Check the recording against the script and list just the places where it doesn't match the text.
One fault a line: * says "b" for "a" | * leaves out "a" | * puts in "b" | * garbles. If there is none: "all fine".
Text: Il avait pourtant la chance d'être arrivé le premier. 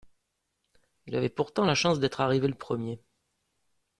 all fine